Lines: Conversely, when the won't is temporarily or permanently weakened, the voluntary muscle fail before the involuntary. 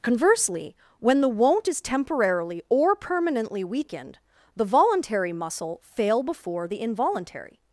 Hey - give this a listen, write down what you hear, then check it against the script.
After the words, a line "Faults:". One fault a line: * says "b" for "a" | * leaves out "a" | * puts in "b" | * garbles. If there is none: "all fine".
Conversely, when the won't is temporarily or permanently weakened, the voluntary muscle fail before the involuntary.
Faults:
all fine